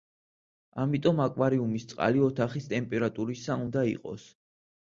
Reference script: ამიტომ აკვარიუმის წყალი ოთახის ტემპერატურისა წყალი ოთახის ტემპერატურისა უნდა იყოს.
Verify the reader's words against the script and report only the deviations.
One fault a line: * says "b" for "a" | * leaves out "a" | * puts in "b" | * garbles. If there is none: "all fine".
* leaves out "წყალი ოთახის ტემპერატურისა"